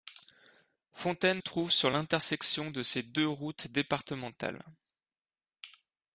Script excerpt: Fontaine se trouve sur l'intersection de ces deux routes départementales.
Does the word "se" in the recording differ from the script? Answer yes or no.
yes